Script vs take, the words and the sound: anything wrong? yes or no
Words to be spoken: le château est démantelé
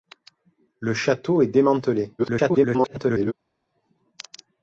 yes